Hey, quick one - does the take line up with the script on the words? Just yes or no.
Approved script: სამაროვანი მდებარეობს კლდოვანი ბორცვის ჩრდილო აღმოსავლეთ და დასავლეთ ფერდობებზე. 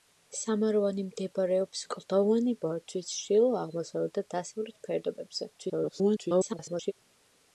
no